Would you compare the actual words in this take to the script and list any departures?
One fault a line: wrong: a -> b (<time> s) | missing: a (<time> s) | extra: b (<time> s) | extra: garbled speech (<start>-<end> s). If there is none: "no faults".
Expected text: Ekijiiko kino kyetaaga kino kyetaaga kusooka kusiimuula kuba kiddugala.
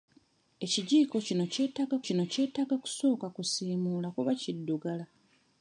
no faults